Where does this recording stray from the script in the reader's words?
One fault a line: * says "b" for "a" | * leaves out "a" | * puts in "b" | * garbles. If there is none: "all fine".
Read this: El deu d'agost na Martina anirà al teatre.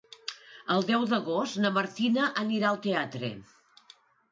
all fine